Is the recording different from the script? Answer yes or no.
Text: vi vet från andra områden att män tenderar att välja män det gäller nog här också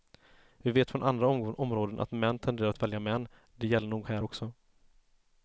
no